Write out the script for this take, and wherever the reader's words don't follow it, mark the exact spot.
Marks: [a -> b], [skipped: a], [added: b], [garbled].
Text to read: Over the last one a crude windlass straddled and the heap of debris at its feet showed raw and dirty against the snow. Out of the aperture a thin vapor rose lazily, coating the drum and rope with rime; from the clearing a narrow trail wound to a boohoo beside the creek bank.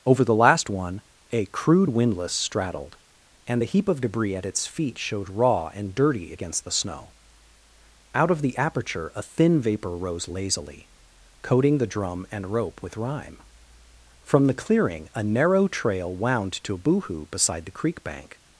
Over the last one a crude windlass straddled and the heap of debris at its feet showed raw and dirty against the snow. Out of the aperture a thin vapor rose lazily, coating the drum and rope with rime; from the clearing a narrow trail wound to a boohoo beside the creek bank.